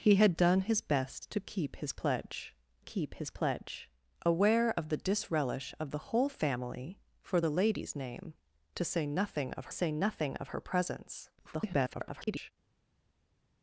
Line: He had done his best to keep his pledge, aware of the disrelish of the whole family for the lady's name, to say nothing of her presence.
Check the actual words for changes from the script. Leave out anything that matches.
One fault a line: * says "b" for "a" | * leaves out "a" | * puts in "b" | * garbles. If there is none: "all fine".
* puts in "keep his pledge"
* puts in "say nothing of"
* garbles